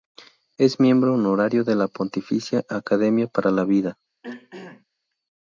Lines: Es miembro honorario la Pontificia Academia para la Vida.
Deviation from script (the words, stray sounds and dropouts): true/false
true